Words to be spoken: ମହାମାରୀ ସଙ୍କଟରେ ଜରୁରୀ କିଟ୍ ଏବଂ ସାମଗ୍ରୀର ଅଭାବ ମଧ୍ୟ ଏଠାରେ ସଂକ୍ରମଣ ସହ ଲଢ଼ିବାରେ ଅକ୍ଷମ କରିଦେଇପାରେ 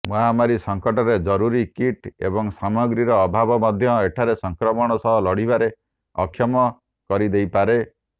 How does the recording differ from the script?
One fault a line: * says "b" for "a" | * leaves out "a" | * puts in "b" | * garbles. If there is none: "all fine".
all fine